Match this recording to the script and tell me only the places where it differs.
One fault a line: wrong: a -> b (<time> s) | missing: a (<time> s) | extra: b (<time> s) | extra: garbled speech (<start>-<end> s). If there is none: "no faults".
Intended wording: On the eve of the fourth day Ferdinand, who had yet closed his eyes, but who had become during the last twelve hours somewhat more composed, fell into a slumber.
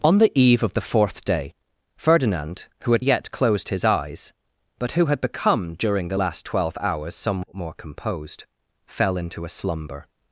no faults